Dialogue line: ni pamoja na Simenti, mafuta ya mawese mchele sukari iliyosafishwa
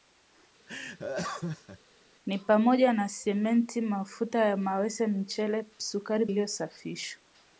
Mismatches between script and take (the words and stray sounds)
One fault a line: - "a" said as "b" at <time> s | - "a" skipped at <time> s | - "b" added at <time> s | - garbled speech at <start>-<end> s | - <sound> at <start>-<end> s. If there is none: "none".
- laugh at 0.7-1.8 s